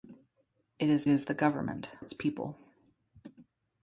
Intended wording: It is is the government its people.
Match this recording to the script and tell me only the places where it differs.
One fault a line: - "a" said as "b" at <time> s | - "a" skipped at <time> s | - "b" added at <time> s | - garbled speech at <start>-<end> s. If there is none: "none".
none